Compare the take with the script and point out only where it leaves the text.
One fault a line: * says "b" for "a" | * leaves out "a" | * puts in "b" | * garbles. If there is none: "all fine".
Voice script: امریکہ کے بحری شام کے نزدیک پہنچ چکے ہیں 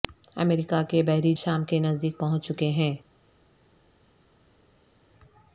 all fine